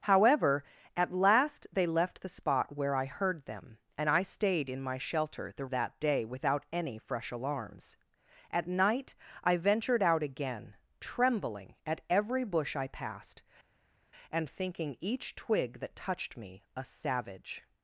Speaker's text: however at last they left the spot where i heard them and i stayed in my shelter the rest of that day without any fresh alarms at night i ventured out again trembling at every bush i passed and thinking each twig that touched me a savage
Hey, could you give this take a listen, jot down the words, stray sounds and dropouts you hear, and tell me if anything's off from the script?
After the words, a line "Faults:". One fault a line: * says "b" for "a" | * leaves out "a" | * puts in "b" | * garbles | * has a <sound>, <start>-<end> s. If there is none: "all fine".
however at last they left the spot where i heard them and i stayed in my shelter the that day without any fresh alarms at night i ventured out again trembling at every bush i passed and thinking each twig that touched me a savage
Faults:
* leaves out "rest of"